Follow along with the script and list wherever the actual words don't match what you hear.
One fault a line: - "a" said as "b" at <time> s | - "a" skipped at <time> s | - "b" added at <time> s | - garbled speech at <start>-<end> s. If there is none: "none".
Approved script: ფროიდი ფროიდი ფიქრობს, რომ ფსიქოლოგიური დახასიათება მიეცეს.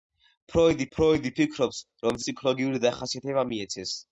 none